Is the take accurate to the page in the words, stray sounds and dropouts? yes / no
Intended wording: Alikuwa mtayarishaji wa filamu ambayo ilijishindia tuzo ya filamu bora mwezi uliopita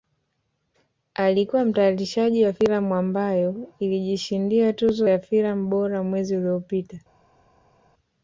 yes